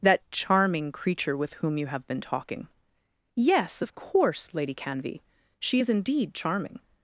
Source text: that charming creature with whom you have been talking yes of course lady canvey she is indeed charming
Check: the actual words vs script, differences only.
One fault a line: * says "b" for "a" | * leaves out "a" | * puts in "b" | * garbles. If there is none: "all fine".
all fine